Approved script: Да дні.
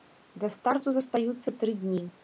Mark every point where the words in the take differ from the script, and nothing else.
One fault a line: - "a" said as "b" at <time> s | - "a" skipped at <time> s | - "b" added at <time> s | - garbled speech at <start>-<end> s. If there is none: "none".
- "старту застаюцца тры" added at 0.5 s